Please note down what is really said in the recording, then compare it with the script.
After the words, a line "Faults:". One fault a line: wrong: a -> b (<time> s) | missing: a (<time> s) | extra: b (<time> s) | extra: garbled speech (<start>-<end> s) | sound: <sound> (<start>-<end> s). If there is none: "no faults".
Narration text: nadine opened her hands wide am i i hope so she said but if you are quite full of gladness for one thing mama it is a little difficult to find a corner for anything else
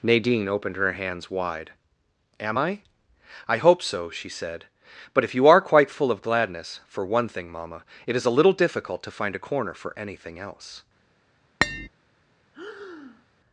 nadine opened her hands wide am i i hope so she said but if you are quite full of gladness for one thing mama it is a little difficult to find a corner for anything else
Faults:
sound: tap (11.6-11.9 s)
sound: breath (12.5-13.3 s)